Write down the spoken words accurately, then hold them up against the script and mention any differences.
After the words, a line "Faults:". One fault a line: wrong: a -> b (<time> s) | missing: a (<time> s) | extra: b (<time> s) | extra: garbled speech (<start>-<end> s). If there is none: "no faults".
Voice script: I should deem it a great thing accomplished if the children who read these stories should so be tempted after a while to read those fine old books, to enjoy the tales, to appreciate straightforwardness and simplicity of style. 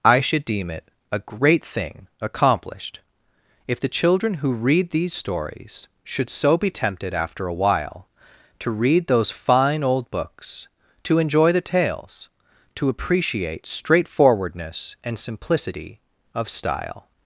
I should deem it a great thing accomplished if the children who read these stories should so be tempted after a while to read those fine old books, to enjoy the tales, to appreciate straightforwardness and simplicity of style.
Faults:
no faults